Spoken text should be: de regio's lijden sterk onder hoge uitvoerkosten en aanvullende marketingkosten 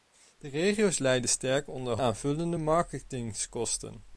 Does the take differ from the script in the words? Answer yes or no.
yes